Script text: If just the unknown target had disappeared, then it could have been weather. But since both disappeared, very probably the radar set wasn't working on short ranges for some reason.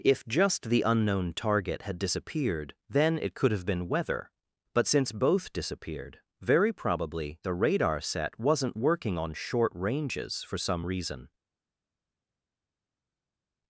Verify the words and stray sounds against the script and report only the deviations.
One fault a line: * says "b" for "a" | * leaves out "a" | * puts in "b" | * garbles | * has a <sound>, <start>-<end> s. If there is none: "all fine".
all fine